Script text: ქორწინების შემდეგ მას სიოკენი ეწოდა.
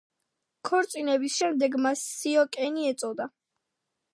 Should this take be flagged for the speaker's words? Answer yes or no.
no